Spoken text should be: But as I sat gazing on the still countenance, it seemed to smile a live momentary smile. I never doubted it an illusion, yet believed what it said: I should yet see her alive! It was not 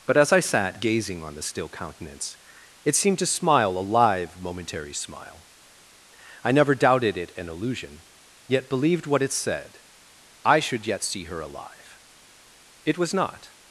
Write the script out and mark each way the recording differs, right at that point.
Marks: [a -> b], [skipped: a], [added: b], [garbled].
But as I sat gazing on the still countenance, it seemed to smile a live momentary smile. I never doubted it an illusion, yet believed what it said: I should yet see her alive! It was not